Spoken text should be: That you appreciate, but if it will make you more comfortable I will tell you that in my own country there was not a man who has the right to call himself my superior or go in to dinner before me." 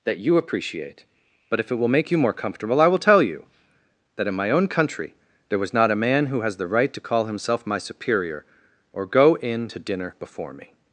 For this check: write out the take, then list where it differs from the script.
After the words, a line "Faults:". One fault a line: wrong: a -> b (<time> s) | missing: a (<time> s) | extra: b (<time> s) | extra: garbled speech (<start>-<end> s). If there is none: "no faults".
That you appreciate, but if it will make you more comfortable I will tell you that in my own country there was not a man who has the right to call himself my superior or go in to dinner before me."
Faults:
no faults